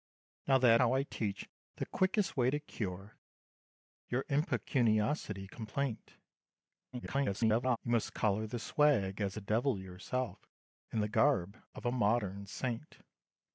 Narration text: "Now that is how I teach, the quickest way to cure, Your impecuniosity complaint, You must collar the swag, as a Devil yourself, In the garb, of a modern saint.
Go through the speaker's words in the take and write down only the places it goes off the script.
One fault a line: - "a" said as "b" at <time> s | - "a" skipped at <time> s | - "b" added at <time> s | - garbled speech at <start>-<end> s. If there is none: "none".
- "is" skipped at 0.8 s
- garbled speech at 6.9-7.8 s